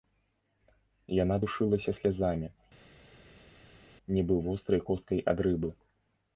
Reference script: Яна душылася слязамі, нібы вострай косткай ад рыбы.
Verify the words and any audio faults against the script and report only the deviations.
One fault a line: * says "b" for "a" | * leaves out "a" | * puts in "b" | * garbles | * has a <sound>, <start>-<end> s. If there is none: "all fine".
all fine